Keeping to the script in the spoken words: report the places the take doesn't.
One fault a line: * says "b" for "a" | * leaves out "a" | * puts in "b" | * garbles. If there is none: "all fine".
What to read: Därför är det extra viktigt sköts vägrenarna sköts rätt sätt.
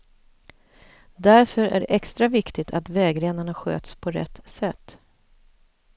* says "att" for "sköts"
* puts in "på"